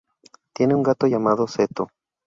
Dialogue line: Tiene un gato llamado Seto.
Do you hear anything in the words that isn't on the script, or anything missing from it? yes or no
no